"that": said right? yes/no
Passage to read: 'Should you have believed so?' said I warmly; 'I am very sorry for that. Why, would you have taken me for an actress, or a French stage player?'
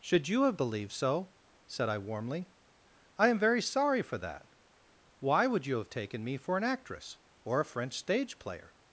yes